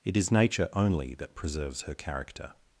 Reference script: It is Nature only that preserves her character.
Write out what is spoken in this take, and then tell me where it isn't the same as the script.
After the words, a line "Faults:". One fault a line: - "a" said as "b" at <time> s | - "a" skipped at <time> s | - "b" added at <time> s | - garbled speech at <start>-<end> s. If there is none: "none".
It is Nature only that preserves her character.
Faults:
none